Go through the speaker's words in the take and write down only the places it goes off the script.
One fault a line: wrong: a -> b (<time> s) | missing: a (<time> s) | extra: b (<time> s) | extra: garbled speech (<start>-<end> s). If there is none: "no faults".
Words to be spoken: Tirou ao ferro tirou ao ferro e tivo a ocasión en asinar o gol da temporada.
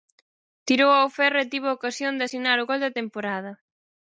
missing: tirou ao ferro (1.4 s)
wrong: en -> de (2.1 s)